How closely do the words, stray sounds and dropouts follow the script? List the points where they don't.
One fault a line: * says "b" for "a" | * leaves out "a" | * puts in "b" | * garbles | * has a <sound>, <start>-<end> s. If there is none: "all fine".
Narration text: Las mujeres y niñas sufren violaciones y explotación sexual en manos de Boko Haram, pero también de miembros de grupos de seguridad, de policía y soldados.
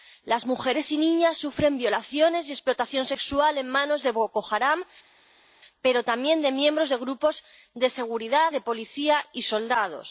all fine